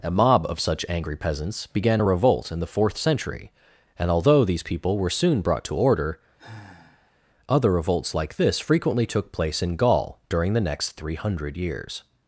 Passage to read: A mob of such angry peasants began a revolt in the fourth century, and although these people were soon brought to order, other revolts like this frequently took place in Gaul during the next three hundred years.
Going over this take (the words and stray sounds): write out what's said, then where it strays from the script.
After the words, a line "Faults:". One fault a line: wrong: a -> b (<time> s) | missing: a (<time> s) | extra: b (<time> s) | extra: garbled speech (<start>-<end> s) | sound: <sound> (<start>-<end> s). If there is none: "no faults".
A mob of such angry peasants began a revolt in the fourth century, and although these people were soon brought to order, other revolts like this frequently took place in Gaul during the next three hundred years.
Faults:
sound: sigh (6.4-7.2 s)